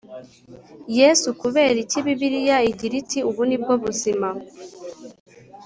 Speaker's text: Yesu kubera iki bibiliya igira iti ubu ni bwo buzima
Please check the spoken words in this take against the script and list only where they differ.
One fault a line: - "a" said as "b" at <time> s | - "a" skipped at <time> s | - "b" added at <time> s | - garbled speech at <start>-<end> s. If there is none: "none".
none